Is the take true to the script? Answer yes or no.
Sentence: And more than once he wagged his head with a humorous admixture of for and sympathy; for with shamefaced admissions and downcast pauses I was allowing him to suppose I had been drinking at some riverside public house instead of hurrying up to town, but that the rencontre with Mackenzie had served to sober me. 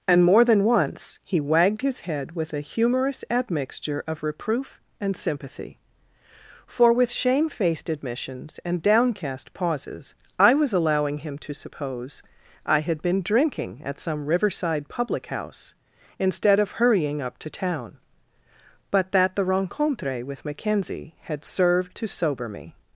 no